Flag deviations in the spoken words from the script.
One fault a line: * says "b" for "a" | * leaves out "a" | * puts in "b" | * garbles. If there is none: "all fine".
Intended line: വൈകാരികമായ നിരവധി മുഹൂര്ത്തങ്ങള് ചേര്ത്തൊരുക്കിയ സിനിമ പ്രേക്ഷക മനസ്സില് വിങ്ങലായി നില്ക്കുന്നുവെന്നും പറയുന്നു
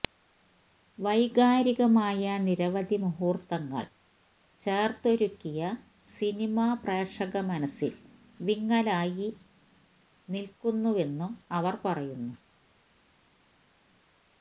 * puts in "അവര്"